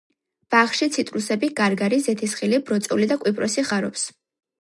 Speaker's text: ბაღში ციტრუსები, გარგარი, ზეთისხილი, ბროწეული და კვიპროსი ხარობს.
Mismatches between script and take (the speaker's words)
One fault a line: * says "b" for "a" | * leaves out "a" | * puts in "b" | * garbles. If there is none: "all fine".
all fine